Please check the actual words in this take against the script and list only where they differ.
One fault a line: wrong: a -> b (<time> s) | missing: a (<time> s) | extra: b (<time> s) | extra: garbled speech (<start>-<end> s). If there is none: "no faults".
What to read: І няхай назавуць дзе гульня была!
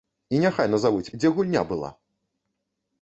no faults